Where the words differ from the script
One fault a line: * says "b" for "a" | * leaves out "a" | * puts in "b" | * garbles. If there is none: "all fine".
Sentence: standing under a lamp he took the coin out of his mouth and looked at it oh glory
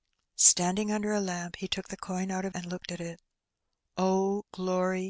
* leaves out "his mouth"